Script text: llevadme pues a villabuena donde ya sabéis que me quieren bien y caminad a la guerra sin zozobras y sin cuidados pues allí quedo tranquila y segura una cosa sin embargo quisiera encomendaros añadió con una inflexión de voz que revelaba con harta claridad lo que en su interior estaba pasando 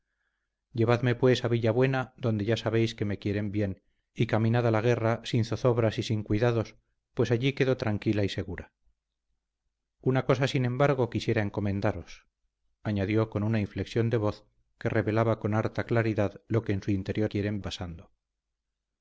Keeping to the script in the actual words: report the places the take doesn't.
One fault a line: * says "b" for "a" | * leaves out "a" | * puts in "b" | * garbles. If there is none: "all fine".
* says "quieren" for "estaba"